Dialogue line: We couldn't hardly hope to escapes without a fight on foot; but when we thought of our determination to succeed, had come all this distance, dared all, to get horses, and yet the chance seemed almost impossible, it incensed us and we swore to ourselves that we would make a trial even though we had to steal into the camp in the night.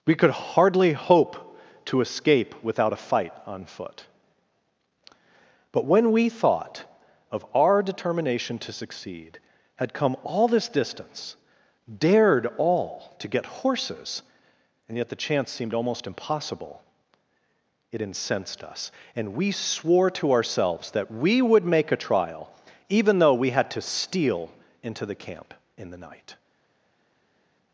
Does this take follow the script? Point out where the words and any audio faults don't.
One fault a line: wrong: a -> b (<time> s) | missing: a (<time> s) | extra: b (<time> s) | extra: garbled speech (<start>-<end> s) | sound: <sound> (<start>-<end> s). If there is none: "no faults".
wrong: couldn't -> could (0.1 s)
wrong: escapes -> escape (2.0 s)